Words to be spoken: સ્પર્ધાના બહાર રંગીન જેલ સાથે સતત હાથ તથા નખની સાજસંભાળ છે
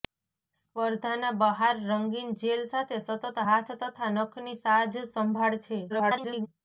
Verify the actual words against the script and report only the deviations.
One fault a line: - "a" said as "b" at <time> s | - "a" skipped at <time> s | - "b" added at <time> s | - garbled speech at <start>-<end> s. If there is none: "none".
- garbled speech at 5.9-6.5 s